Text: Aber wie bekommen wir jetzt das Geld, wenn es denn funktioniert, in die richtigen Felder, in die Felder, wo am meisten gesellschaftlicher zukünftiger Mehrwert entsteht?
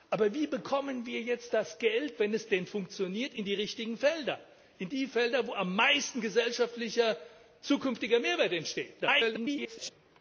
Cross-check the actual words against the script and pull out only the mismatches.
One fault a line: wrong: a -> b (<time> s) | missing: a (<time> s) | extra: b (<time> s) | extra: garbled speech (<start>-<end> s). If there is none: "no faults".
extra: garbled speech (9.0-9.9 s)